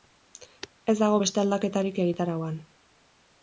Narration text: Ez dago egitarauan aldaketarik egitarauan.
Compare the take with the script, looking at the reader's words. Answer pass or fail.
fail